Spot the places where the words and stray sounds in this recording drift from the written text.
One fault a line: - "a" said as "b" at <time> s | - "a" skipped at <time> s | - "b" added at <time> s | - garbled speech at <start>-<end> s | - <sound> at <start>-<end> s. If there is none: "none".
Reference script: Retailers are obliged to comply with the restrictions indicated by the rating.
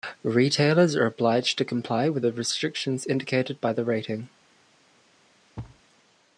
- thud at 5.6-5.8 s